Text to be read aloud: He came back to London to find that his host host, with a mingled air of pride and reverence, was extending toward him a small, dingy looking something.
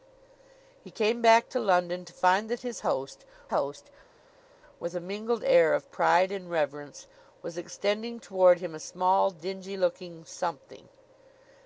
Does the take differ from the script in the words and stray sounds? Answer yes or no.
no